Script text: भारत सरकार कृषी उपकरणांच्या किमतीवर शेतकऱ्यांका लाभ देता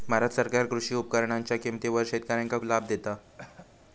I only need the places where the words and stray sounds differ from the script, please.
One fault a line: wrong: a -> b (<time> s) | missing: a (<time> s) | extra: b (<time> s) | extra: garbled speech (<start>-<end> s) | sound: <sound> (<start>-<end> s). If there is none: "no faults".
sound: cough (3.4-3.7 s)